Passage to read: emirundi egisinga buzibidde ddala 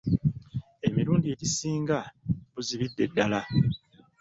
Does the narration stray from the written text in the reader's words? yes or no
no